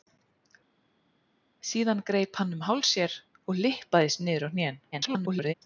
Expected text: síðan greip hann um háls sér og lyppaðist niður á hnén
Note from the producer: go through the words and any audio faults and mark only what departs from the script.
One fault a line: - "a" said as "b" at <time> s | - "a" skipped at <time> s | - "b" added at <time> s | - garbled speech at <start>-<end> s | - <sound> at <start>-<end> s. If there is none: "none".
- garbled speech at 4.9-5.5 s